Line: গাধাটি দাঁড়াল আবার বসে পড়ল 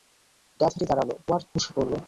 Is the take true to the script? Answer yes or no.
yes